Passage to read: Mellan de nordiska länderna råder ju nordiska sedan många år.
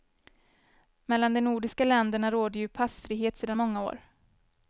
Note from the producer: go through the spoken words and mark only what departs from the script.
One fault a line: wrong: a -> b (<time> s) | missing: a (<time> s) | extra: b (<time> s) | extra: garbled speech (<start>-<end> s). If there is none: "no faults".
wrong: nordiska -> passfrihet (2.7 s)